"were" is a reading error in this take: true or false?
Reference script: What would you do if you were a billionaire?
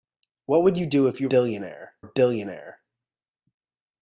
true